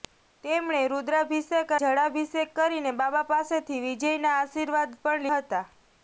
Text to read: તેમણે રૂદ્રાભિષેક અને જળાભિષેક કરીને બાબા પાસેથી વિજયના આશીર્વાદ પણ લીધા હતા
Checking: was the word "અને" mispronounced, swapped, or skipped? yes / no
yes